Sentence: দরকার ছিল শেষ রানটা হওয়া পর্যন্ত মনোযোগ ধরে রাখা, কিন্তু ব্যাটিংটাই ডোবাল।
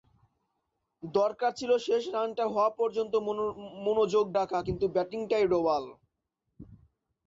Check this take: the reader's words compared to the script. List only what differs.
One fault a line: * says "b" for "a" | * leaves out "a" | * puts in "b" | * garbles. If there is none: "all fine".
* leaves out "ধরে"